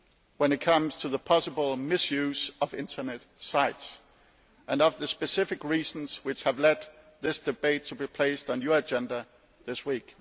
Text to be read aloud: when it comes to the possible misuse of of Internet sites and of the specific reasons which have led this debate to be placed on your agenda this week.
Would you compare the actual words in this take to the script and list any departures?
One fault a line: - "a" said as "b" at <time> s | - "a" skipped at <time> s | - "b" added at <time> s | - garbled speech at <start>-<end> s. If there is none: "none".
- "of" skipped at 2.7 s